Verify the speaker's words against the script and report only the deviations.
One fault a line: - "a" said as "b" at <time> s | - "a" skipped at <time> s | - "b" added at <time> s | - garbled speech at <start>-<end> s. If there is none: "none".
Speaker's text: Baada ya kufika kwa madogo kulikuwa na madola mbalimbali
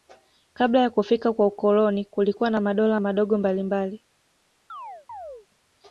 - "Baada" said as "Kabla" at 0.5 s
- "madogo" said as "ukoloni" at 1.5 s
- "madogo" added at 3.0 s